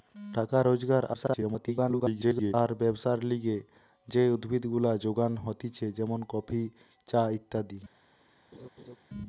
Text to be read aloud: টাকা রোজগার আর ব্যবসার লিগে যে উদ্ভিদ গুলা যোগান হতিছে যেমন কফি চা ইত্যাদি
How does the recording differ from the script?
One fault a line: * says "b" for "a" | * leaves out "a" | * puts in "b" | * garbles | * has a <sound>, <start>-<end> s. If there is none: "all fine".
* garbles
* has a laugh, 8.5-9.0 s